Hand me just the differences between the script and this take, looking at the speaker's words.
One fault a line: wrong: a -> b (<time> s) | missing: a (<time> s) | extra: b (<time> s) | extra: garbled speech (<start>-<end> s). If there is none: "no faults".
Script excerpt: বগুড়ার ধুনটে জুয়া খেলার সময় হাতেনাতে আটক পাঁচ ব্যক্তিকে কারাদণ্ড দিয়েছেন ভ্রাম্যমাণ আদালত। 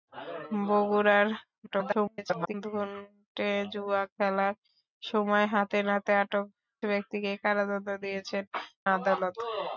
extra: garbled speech (1.7-2.5 s)
missing: পাঁচ (6.5 s)
missing: ভ্রাম্যমাণ (8.4 s)